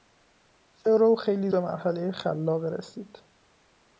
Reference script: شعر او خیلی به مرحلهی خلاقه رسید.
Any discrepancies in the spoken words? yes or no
no